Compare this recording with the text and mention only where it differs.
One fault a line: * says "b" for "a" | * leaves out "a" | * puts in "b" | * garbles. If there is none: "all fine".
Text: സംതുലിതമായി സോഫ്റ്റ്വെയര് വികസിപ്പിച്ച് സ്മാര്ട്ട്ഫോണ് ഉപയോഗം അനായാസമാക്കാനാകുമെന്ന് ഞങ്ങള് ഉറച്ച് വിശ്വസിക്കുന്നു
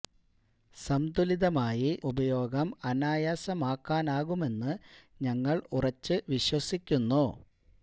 * leaves out "സോഫ്റ്റ്വെയര് വികസിപ്പിച്ച് സ്മാര്ട്ട്ഫോണ്"